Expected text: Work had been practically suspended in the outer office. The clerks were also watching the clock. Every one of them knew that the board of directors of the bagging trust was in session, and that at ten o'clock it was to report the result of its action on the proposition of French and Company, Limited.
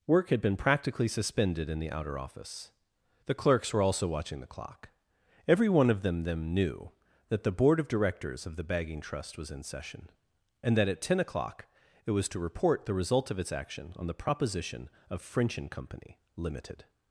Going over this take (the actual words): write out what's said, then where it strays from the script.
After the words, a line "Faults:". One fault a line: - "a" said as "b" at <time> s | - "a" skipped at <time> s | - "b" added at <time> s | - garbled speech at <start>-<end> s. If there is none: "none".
Work had been practically suspended in the outer office. The clerks were also watching the clock. Every one of them them knew that the board of directors of the bagging trust was in session, and that at ten o'clock it was to report the result of its action on the proposition of French and Company, Limited.
Faults:
- "them" added at 6.2 s